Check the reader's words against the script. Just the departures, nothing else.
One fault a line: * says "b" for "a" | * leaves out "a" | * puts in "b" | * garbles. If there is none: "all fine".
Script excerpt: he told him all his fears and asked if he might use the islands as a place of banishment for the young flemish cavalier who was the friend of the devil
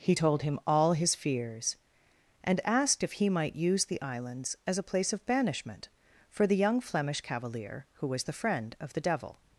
all fine